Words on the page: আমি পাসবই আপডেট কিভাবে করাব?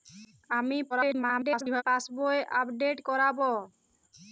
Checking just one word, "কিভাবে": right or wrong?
wrong